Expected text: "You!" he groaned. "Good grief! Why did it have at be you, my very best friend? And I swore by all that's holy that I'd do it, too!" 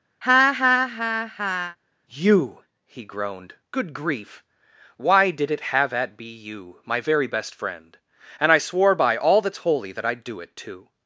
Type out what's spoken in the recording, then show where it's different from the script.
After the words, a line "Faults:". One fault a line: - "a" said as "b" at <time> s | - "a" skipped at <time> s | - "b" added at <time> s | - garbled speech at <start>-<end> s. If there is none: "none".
"You!" he groaned. "Good grief! Why did it have at be you, my very best friend? And I swore by all that's holy that I'd do it, too!"
Faults:
none